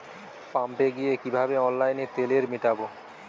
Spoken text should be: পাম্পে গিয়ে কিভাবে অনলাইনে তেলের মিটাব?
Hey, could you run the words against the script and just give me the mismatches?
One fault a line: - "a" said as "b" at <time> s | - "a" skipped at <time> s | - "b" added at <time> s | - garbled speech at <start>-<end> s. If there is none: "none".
none